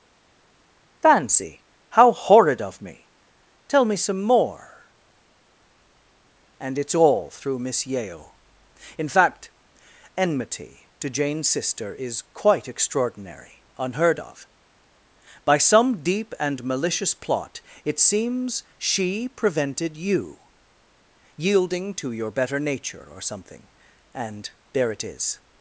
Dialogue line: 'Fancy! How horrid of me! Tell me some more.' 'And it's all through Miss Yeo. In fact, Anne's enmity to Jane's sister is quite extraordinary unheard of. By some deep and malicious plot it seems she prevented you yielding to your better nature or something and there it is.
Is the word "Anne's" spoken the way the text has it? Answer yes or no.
no